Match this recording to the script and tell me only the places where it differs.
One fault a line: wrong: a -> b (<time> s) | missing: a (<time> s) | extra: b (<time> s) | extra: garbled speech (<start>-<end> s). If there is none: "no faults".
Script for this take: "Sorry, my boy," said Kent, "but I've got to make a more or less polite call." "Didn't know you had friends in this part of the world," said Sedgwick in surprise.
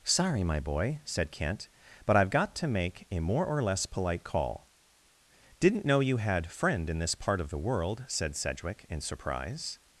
wrong: friends -> friend (6.5 s)